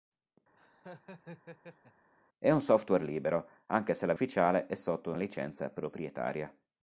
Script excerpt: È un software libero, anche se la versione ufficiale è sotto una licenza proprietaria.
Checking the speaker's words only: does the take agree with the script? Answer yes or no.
no